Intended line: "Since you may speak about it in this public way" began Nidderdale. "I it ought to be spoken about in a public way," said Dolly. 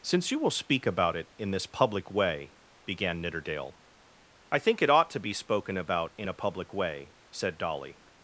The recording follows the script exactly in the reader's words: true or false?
false